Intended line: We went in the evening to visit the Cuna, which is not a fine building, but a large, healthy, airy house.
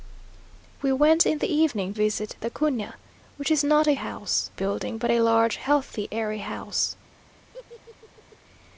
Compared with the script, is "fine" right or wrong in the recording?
wrong